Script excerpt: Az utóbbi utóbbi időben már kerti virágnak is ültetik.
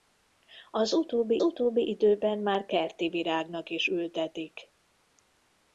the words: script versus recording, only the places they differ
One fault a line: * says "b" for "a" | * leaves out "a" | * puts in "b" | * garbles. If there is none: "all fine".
all fine